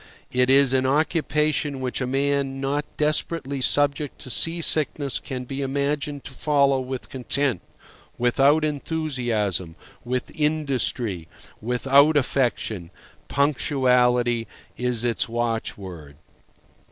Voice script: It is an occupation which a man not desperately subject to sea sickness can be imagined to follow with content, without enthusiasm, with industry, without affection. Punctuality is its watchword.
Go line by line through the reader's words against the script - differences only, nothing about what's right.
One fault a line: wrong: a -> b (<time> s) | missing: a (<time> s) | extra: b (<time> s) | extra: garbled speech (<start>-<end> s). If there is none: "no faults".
no faults